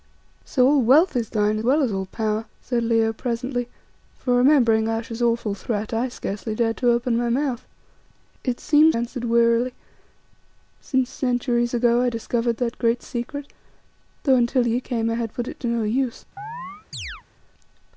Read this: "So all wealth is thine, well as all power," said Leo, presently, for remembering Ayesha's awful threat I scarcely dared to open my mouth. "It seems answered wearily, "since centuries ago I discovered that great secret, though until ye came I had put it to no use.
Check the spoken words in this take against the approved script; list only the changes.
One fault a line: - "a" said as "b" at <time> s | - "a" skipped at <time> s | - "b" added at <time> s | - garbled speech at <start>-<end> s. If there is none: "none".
none